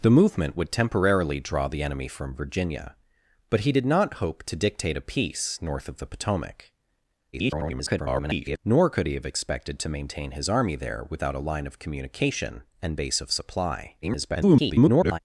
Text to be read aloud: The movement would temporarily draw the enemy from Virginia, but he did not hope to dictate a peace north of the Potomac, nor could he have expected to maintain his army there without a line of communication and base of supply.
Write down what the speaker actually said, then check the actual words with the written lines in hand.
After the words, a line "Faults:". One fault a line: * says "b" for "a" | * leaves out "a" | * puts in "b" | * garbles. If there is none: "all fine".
The movement would temporarily draw the enemy from Virginia, but he did not hope to dictate a peace north of the Potomac, [garbled] nor could he have expected to maintain his army there without a line of communication and base of supply. [garbled]
Faults:
* garbles
* garbles